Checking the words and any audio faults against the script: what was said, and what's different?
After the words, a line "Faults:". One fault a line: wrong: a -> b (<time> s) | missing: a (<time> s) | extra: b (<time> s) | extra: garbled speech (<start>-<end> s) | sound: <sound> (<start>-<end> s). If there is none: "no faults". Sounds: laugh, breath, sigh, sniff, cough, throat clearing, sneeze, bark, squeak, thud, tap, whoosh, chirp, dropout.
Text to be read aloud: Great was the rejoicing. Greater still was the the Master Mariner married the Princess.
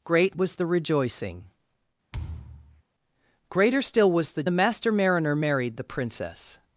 Great was the rejoicing. Greater still was the the Master Mariner married the Princess.
Faults:
sound: thud (2.1-2.8 s)